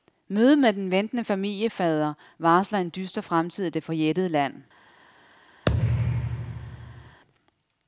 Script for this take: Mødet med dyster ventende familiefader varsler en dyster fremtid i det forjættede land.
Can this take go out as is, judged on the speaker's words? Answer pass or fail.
fail